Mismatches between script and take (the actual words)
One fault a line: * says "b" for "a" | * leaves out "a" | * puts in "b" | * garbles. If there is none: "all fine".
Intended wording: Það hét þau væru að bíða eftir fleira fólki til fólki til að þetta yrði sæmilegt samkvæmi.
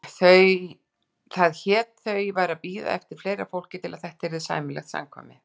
* leaves out "fólki til"